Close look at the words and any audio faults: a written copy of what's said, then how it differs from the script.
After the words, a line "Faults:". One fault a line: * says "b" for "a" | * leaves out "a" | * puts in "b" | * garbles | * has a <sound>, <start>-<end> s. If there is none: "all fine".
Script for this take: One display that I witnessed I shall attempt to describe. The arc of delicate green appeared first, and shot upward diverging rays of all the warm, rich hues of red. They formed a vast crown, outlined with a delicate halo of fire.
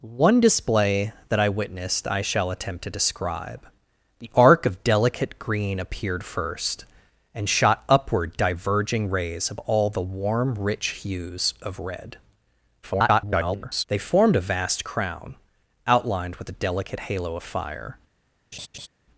One display that I witnessed I shall attempt to describe. The arc of delicate green appeared first, and shot upward diverging rays of all the warm, rich hues of red. [garbled] They formed a vast crown, outlined with a delicate halo of fire.
Faults:
* garbles
* has a laugh, 18.5-18.9 s